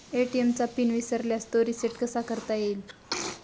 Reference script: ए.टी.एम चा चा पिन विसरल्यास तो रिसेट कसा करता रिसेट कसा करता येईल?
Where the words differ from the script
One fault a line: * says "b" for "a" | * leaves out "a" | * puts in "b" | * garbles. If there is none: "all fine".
* leaves out "चा"
* leaves out "रिसेट कसा करता"